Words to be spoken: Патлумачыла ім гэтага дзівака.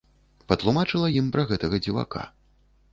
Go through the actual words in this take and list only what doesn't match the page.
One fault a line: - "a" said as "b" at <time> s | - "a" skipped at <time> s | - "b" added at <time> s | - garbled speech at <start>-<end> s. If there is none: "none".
- "пра" added at 1.4 s